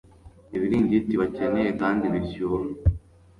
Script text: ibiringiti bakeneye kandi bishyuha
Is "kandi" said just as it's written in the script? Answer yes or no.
yes